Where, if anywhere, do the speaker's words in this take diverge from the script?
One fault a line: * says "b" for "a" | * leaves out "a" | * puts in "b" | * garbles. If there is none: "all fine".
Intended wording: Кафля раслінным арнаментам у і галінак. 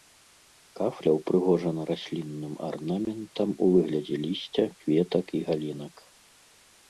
* puts in "ўпрыгожана"
* puts in "выглядзе лісця кветак"